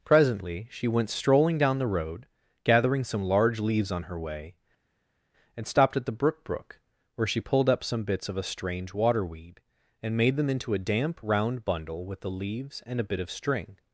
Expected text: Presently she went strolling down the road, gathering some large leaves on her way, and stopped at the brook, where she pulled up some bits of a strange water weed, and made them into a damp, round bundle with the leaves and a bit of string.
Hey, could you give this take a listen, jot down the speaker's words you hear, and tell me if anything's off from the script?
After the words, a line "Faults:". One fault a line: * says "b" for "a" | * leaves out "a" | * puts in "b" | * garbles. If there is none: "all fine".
Presently she went strolling down the road, gathering some large leaves on her way, and stopped at the brook brook, where she pulled up some bits of a strange water weed, and made them into a damp, round bundle with the leaves and a bit of string.
Faults:
* puts in "brook"